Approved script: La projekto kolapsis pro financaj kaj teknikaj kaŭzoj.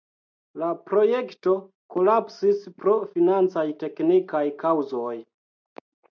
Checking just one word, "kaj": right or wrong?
wrong